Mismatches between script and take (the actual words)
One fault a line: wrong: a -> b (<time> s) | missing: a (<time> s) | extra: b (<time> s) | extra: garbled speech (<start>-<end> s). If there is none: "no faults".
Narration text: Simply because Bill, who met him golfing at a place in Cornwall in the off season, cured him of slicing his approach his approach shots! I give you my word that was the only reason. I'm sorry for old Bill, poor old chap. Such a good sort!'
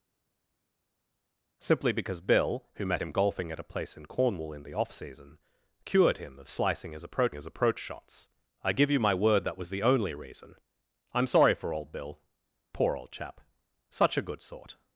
no faults